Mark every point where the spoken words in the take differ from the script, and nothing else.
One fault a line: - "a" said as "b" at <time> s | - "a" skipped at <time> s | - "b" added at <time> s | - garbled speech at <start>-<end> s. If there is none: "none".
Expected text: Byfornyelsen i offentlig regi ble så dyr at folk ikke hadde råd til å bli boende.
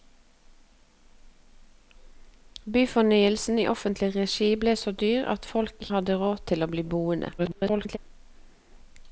- "ikke" skipped at 5.9 s
- garbled speech at 7.4-8.0 s